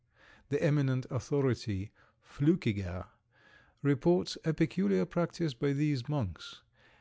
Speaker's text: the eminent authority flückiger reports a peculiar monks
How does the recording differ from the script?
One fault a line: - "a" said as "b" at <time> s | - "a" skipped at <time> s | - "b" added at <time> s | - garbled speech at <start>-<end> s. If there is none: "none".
- "practice by these" added at 5.0 s